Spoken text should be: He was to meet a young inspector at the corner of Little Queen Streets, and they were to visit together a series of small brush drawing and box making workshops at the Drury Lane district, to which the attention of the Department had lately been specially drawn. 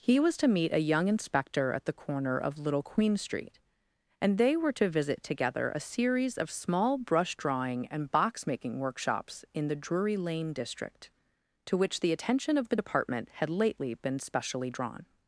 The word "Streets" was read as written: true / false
false